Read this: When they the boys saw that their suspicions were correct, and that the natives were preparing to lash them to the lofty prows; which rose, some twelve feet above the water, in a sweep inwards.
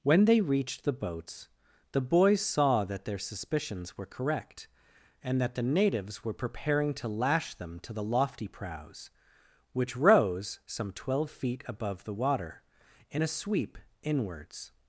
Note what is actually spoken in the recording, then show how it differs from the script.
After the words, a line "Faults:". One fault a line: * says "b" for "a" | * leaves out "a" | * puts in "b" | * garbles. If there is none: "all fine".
When they reached the boats, the boys saw that their suspicions were correct, and that the natives were preparing to lash them to the lofty prows; which rose, some twelve feet above the water, in a sweep inwards.
Faults:
* puts in "reached the boats"